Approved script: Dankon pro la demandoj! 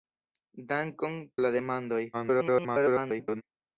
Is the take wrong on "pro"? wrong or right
wrong